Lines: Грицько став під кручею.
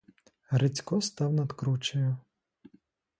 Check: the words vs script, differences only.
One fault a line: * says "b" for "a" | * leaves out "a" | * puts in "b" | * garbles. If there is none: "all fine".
* says "над" for "під"